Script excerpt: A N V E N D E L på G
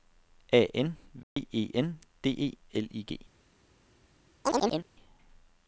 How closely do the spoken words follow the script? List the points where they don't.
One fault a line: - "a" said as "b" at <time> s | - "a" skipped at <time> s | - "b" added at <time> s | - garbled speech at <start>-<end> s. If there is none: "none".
- "på" said as "I" at 2.9 s